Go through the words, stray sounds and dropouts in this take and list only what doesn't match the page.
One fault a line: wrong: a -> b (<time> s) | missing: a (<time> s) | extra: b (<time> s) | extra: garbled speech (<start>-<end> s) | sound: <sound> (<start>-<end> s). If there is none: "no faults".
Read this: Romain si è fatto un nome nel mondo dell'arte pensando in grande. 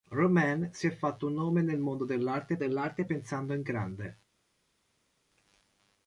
extra: dell'arte (2.6 s)